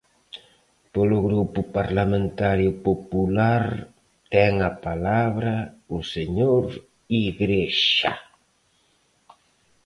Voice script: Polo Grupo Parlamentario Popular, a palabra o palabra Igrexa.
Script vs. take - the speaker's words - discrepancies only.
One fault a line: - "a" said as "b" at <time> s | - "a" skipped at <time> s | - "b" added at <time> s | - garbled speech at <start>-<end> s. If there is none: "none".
- "ten" added at 4.3 s
- "palabra" said as "señor" at 6.1 s